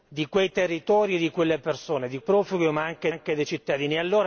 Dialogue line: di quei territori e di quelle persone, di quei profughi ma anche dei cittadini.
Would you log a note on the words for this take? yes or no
yes